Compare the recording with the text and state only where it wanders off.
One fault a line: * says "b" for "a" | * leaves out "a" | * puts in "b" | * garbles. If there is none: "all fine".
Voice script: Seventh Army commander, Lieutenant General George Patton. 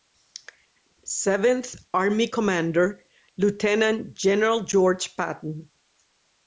all fine